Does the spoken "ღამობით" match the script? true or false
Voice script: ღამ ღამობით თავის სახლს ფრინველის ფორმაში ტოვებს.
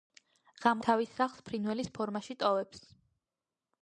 false